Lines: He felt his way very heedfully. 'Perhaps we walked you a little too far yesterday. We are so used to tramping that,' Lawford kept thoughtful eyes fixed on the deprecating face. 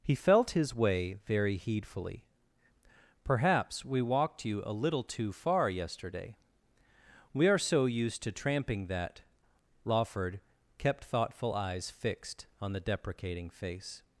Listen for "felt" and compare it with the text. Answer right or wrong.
right